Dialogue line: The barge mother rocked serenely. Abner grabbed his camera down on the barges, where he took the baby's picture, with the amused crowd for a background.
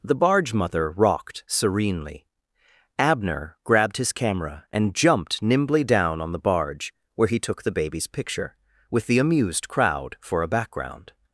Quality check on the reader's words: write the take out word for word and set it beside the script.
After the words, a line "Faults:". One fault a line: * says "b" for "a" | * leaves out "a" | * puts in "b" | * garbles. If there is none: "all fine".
The barge mother rocked serenely. Abner grabbed his camera and jumped nimbly down on the barge, where he took the baby's picture, with the amused crowd for a background.
Faults:
* puts in "and jumped nimbly"
* says "barge" for "barges"